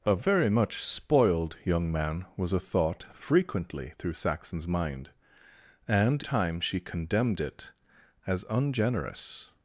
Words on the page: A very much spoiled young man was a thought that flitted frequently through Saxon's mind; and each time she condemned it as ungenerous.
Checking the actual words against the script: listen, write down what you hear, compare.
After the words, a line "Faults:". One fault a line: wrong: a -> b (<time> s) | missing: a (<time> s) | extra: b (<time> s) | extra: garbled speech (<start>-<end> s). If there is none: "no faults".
A very much spoiled young man was a thought frequently through Saxon's mind; and time she condemned it as ungenerous.
Faults:
missing: that flitted (3.0 s)
missing: each (6.2 s)